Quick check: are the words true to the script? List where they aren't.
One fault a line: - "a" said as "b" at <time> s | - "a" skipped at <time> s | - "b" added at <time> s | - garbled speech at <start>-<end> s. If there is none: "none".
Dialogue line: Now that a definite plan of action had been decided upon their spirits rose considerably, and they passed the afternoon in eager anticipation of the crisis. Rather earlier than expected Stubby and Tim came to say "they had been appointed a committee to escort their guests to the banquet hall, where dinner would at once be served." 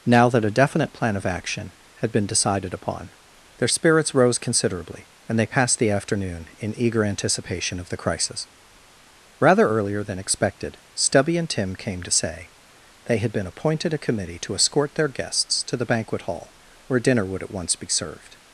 none